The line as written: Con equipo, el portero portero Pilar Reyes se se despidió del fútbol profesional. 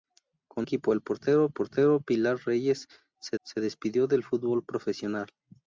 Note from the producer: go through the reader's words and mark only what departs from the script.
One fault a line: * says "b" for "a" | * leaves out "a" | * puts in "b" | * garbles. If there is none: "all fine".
all fine